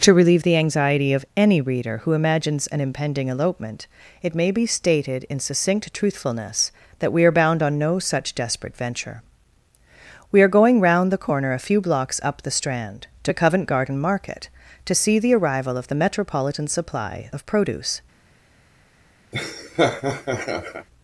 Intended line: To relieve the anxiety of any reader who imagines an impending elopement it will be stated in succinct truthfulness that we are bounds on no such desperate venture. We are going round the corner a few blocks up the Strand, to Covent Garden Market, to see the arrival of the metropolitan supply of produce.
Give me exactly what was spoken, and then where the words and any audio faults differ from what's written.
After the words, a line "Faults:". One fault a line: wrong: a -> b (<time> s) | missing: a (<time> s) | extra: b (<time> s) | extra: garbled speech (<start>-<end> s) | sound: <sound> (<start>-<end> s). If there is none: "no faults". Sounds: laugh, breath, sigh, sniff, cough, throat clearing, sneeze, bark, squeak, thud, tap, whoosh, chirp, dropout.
To relieve the anxiety of any reader who imagines an impending elopement it may be stated in succinct truthfulness that we are bound on no such desperate venture. We are going round the corner a few blocks up the Strand, to Covent Garden Market, to see the arrival of the metropolitan supply of produce.
Faults:
wrong: will -> may (4.3 s)
wrong: bounds -> bound (7.3 s)
sound: laugh (19.3-20.9 s)